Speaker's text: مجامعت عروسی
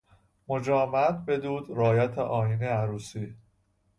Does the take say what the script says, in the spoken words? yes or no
no